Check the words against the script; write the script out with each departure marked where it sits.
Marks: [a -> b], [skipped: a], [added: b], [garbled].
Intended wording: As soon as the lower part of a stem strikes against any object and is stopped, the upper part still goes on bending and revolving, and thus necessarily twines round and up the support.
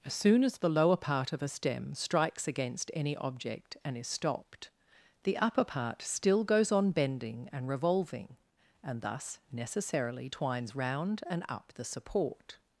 As soon as the lower part of a stem strikes against any object and is stopped, the upper part still goes on bending and revolving, and thus necessarily twines round and up the support.